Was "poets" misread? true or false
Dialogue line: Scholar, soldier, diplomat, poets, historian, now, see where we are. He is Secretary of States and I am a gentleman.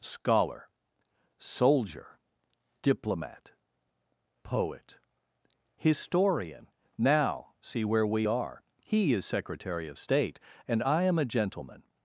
true